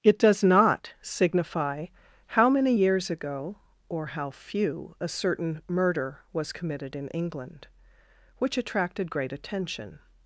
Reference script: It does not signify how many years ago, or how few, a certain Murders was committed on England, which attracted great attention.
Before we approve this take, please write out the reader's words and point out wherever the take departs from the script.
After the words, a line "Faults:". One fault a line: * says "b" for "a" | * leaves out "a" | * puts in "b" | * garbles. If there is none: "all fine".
It does not signify how many years ago, or how few, a certain Murder was committed in England, which attracted great attention.
Faults:
* says "Murder" for "Murders"
* says "in" for "on"